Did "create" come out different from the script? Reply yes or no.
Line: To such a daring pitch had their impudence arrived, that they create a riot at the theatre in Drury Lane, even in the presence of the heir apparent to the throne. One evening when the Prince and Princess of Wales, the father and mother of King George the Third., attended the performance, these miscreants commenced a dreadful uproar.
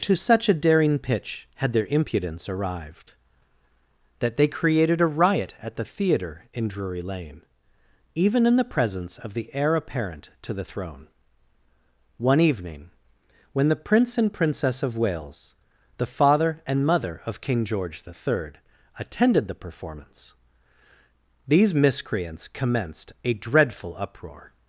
yes